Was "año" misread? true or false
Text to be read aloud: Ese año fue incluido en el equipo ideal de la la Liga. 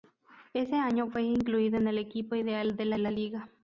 false